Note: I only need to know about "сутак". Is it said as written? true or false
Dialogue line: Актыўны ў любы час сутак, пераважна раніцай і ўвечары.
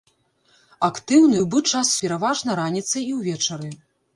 false